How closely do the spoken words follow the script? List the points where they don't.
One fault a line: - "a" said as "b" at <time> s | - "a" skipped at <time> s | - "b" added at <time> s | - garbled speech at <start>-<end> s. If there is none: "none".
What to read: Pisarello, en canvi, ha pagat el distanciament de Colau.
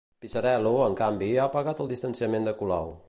none